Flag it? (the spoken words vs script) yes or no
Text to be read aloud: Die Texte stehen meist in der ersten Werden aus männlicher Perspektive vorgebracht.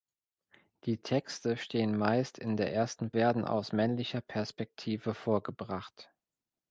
no